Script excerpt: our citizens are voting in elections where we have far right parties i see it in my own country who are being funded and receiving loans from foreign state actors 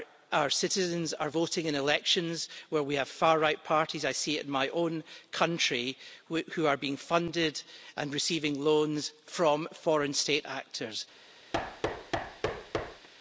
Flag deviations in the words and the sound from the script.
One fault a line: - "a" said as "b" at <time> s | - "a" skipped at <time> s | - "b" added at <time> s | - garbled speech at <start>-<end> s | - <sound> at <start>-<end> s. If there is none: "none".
- thud at 11.5-13.1 s